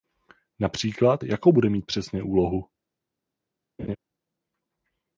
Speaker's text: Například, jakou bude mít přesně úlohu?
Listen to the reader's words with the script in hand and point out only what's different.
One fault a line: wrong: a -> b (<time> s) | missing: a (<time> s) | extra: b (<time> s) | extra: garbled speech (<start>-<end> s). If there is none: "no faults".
no faults